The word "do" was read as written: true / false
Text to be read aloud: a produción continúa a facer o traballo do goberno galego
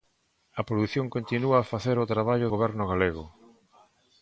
false